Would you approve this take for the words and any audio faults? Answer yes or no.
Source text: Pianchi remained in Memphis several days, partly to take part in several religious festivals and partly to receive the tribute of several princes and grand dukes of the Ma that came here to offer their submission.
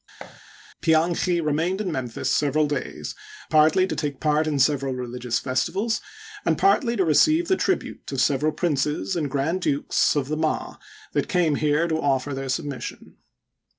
no